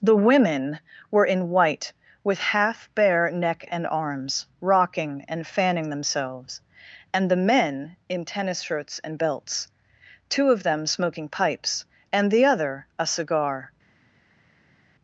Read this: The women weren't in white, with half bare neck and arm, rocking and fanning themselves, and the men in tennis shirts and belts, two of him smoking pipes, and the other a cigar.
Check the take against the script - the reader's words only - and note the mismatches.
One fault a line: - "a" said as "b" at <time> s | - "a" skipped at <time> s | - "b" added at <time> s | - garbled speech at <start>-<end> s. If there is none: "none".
- "weren't" said as "were" at 1.1 s
- "arm" said as "arms" at 3.9 s
- "him" said as "them" at 10.6 s